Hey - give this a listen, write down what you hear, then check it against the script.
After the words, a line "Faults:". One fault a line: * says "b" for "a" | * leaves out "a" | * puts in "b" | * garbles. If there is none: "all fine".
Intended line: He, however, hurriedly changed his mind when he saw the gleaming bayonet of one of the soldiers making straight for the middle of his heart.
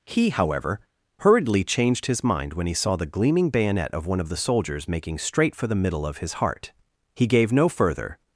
He, however, hurriedly changed his mind when he saw the gleaming bayonet of one of the soldiers making straight for the middle of his heart. He gave no further
Faults:
* puts in "He gave no further"